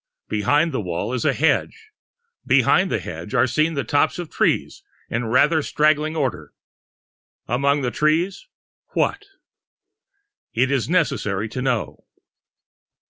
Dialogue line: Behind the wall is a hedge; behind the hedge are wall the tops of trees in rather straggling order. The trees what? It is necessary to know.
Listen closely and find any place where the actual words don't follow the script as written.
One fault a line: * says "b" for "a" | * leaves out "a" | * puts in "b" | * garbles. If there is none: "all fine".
* says "seen" for "wall"
* puts in "Among"